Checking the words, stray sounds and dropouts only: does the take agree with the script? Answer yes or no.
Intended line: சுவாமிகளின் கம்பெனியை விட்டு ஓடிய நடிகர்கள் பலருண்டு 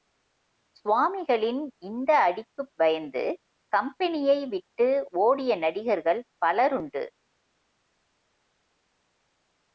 no